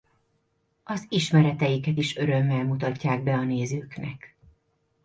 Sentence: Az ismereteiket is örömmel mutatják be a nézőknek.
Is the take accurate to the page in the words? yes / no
yes